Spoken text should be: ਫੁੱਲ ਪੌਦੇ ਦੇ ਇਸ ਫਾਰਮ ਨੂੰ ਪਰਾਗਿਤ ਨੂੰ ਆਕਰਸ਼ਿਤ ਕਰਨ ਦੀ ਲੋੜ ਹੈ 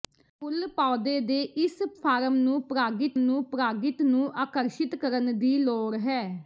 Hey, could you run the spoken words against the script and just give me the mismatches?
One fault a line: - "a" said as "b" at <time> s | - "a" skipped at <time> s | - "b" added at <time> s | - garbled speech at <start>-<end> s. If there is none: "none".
- "ਪਰਾਗਿਤ ਨੂੰ" added at 3.5 s